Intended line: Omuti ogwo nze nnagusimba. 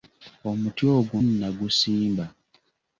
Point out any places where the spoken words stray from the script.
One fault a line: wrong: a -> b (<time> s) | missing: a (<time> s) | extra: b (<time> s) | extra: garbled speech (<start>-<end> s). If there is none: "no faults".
missing: nze (1.2 s)